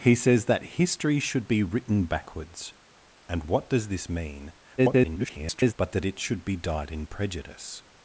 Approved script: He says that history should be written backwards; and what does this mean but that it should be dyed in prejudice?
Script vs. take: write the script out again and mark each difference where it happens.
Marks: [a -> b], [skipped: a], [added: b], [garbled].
He says that history should be written backwards; and what does this mean [garbled] but that it should be dyed in prejudice?